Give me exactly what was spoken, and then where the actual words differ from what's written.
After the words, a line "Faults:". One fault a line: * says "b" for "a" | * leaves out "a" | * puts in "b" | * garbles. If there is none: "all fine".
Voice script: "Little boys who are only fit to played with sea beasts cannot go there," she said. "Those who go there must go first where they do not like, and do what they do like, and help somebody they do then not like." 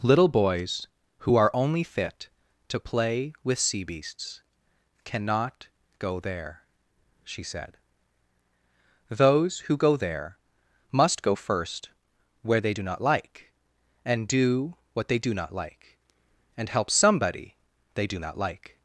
"Little boys who are only fit to play with sea beasts cannot go there," she said. "Those who go there must go first where they do not like, and do what they do not like, and help somebody they do not like."
Faults:
* says "play" for "played"
* puts in "not"
* leaves out "then"